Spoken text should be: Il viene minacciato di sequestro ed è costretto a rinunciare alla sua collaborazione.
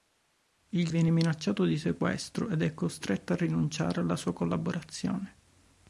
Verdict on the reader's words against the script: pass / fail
pass